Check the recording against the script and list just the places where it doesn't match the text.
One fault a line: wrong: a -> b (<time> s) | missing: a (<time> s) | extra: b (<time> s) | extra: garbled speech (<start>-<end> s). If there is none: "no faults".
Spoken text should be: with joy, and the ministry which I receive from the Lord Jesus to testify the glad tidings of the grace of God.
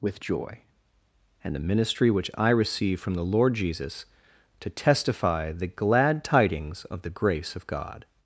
no faults